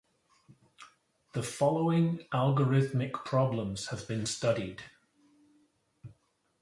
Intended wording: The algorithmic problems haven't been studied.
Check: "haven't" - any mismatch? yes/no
yes